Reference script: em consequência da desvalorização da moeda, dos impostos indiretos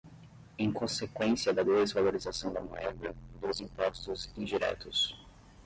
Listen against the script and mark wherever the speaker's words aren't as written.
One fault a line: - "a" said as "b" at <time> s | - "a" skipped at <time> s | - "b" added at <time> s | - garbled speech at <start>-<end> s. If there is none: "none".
none